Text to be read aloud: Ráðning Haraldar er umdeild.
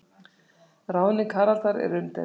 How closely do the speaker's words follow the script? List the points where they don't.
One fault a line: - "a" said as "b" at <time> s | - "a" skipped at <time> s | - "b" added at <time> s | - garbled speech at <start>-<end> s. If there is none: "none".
none